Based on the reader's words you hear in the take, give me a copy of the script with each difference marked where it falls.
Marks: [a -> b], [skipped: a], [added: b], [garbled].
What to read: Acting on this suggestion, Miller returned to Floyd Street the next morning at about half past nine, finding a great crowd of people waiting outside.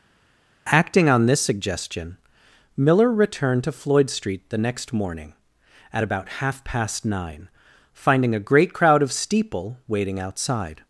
Acting on this suggestion, Miller returned to Floyd Street the next morning at about half past nine, finding a great crowd of [people -> steeple] waiting outside.